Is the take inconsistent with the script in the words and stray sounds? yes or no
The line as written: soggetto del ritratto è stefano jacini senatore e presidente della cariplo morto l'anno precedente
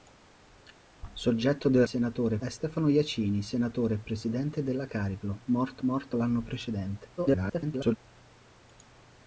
yes